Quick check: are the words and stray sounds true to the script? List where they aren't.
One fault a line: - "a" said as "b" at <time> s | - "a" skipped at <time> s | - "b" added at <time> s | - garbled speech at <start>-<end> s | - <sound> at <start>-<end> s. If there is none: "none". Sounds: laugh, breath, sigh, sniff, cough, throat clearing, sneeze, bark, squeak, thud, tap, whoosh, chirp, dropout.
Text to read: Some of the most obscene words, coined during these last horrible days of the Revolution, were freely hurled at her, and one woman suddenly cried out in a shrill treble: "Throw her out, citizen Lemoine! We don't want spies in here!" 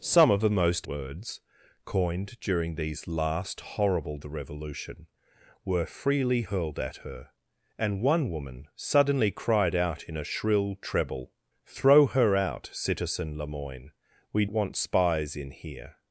- "obscene" skipped at 0.9 s
- "days of" skipped at 4.2 s
- "don't" skipped at 14.4 s